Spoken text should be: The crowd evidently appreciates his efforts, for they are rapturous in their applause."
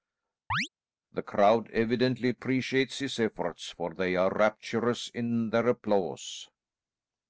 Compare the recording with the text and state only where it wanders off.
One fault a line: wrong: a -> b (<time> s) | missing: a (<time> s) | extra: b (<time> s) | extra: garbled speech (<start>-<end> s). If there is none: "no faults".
no faults